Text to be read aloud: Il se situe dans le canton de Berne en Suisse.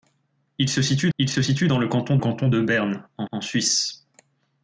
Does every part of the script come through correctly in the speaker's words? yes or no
no